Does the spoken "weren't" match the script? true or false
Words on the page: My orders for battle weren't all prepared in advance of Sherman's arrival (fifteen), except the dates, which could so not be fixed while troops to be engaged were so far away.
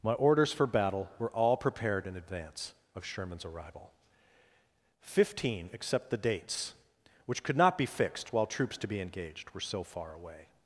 false